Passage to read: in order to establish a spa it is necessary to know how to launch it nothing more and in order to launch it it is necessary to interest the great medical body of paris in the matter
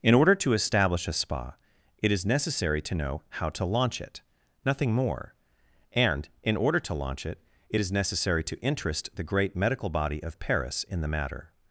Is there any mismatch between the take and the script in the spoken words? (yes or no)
no